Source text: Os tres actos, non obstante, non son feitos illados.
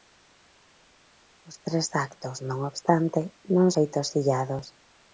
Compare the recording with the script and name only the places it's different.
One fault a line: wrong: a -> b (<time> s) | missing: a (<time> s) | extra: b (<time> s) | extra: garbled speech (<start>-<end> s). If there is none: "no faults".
missing: son (3.7 s)